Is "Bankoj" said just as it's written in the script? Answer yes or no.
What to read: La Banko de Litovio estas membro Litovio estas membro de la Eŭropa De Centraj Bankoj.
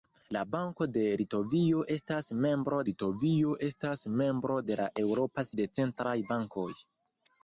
yes